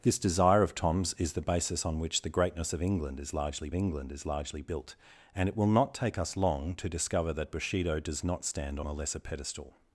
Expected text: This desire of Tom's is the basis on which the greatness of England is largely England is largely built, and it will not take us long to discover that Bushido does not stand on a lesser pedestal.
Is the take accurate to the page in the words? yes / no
yes